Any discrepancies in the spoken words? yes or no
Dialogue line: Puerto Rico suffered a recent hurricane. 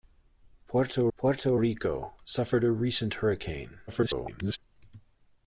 yes